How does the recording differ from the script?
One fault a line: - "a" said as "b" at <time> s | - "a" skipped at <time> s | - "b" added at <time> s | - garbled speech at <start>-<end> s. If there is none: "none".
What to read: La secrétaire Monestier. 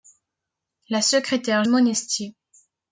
none